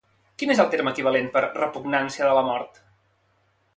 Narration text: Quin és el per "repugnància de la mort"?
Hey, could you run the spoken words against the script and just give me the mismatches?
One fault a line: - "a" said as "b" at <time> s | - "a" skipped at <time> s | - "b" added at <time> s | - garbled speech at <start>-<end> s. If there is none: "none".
- "terme equivalent" added at 0.8 s